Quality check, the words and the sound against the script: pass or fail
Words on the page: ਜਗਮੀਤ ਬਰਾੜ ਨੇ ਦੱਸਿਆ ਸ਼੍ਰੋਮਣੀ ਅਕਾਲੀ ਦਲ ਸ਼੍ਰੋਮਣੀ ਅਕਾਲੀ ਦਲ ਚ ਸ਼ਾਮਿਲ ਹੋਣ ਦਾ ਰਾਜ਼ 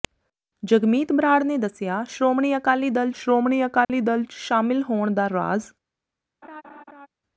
fail